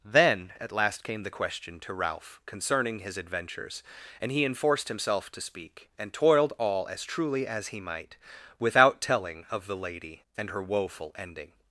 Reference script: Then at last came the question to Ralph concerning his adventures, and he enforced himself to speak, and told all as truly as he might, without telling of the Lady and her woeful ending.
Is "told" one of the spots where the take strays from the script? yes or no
yes